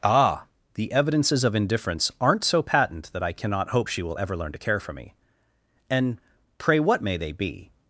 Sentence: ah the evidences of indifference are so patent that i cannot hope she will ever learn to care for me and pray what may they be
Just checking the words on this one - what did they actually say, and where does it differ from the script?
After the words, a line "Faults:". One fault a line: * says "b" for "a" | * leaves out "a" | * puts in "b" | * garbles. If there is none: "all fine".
ah the evidences of indifference aren't so patent that i cannot hope she will ever learn to care for me and pray what may they be
Faults:
* says "aren't" for "are"